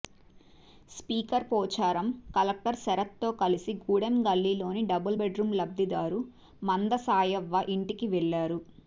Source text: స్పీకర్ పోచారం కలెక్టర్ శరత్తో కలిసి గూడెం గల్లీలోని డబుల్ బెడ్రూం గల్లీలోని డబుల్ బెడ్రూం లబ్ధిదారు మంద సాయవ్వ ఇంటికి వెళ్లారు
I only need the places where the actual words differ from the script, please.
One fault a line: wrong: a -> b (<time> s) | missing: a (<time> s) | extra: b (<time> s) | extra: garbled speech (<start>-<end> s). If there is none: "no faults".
missing: గల్లీలోని డబుల్ బెడ్రూం (5.5 s)